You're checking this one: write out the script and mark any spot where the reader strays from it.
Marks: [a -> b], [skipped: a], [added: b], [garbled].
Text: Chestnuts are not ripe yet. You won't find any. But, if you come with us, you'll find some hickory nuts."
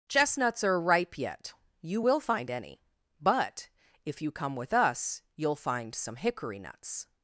Chestnuts are [skipped: not] ripe yet. You [won't -> will] find any. But, if you come with us, you'll find some hickory nuts."